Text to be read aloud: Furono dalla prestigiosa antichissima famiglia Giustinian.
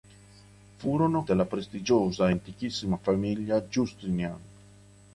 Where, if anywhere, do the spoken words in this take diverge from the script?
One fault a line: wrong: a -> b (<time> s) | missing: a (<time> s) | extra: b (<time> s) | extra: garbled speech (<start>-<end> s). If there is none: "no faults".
no faults